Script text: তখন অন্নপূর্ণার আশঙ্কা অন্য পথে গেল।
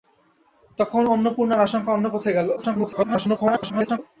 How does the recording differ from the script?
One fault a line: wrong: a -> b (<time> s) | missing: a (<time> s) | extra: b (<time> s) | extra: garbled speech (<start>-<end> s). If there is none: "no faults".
extra: garbled speech (2.6-4.0 s)